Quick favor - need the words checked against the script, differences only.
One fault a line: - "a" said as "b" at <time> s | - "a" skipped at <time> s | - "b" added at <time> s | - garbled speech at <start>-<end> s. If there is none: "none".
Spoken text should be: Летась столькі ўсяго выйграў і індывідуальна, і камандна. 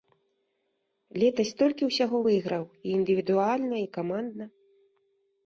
none